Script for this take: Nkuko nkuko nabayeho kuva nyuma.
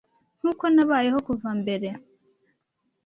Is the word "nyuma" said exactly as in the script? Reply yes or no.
no